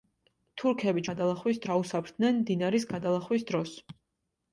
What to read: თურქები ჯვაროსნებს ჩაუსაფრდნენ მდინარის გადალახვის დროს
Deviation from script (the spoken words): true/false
true